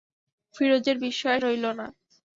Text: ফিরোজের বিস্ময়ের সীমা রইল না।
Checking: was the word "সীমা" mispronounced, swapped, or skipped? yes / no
yes